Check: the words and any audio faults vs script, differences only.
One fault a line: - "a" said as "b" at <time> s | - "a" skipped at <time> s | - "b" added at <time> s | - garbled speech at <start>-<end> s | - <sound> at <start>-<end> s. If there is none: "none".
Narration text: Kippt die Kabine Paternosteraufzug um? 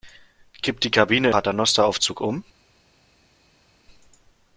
none